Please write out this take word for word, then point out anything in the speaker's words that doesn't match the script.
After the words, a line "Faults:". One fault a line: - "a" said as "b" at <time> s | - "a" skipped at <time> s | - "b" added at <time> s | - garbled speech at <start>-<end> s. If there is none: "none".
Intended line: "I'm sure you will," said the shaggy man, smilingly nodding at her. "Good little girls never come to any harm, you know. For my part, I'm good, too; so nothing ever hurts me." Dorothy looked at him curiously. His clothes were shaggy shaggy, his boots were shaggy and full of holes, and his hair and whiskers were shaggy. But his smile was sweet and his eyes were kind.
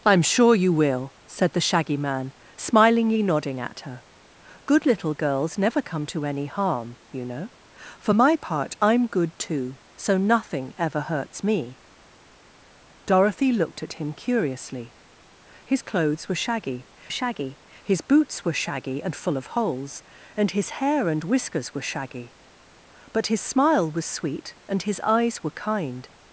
"I'm sure you will," said the shaggy man, smilingly nodding at her. "Good little girls never come to any harm, you know. For my part, I'm good, too; so nothing ever hurts me." Dorothy looked at him curiously. His clothes were shaggy shaggy, his boots were shaggy and full of holes, and his hair and whiskers were shaggy. But his smile was sweet and his eyes were kind.
Faults:
none